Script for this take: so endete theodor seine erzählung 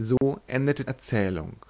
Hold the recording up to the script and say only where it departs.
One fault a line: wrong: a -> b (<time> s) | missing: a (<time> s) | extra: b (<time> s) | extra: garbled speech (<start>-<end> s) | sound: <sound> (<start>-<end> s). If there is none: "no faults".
sound: dropout (0.2-0.2 s)
missing: theodor seine (0.9 s)